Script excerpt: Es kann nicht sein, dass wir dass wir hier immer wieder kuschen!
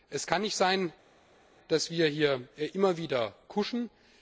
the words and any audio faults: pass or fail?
fail